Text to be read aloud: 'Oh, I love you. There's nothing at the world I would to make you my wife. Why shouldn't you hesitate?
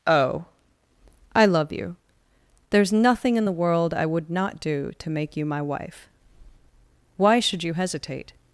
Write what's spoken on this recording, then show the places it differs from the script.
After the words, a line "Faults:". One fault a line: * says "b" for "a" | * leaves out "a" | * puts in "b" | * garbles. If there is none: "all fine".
'Oh, I love you. There's nothing in the world I would not do to make you my wife. Why should you hesitate?
Faults:
* says "in" for "at"
* puts in "not do"
* says "should" for "shouldn't"